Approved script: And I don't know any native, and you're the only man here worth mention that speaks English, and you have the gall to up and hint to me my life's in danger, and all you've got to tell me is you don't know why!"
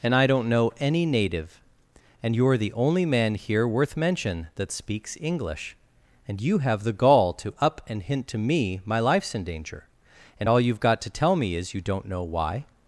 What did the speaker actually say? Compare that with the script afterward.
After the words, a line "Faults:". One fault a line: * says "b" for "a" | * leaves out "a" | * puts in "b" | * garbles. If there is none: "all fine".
And I don't know any native, and you're the only man here worth mention that speaks English, and you have the gall to up and hint to me my life's in danger, and all you've got to tell me is you don't know why!"
Faults:
all fine